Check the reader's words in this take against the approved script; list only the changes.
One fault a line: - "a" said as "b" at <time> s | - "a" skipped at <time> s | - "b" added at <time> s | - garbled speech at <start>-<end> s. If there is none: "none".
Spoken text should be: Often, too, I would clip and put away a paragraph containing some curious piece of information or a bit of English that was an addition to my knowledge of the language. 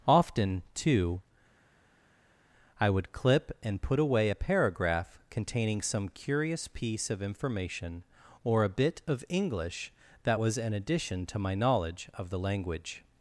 none